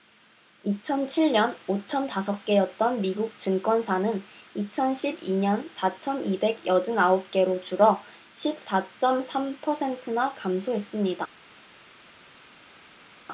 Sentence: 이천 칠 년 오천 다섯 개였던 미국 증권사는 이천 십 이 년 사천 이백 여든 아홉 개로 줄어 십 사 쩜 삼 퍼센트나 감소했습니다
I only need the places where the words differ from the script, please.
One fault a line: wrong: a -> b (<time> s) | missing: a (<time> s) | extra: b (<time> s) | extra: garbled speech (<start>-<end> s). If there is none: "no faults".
no faults